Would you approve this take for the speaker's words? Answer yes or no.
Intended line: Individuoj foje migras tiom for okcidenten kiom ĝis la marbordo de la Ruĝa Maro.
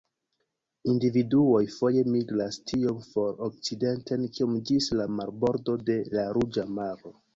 yes